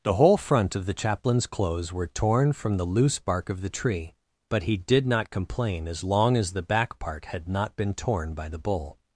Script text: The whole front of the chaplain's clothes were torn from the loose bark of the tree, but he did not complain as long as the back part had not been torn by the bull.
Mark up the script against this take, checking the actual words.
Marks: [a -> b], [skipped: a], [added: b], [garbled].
The whole front of the chaplain's clothes were torn from the loose bark of the tree, but he did not complain as long as the back part had not been torn by the bull.